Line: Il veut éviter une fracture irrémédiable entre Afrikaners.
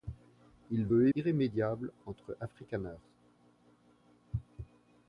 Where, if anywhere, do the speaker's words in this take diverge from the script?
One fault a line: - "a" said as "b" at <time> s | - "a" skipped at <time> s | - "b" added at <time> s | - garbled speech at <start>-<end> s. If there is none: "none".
- "éviter une fracture" skipped at 1.1 s